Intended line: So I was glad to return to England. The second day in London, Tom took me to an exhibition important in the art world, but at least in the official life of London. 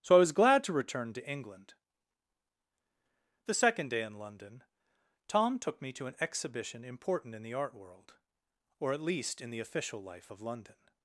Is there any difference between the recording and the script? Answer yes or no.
yes